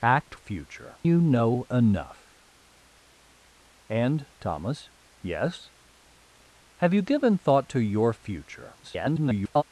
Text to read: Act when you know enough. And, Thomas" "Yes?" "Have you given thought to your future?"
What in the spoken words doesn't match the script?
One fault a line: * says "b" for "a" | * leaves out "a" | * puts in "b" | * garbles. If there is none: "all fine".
* says "future" for "when"
* garbles